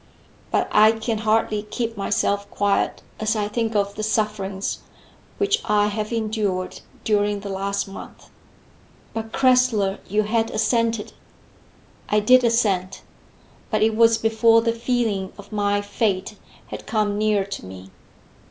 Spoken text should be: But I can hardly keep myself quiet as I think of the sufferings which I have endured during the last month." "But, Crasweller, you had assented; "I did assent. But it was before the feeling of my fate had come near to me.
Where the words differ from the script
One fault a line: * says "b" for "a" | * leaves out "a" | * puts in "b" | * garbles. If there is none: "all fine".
all fine